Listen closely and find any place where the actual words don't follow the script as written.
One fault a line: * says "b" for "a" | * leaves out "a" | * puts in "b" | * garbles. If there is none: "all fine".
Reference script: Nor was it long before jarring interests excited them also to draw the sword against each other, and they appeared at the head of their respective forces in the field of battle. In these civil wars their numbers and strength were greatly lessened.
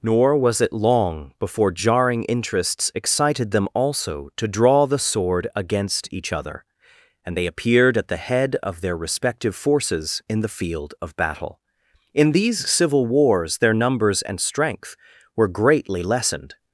all fine